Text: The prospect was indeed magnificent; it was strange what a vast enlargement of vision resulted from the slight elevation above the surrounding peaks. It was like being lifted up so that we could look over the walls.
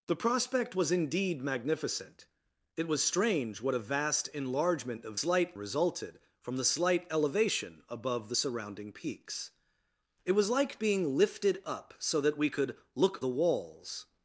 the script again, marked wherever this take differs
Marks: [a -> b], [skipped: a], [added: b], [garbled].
The prospect was indeed magnificent; it was strange what a vast enlargement of [vision -> slight] resulted from the slight elevation above the surrounding peaks. It was like being lifted up so that we could look [skipped: over] the walls.